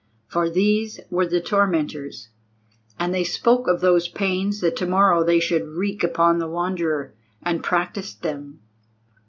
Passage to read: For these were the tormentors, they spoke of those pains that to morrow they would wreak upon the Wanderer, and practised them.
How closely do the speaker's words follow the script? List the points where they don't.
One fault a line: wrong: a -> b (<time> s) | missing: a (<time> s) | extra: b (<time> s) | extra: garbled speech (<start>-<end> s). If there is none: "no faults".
extra: and (3.0 s)
wrong: would -> should (5.4 s)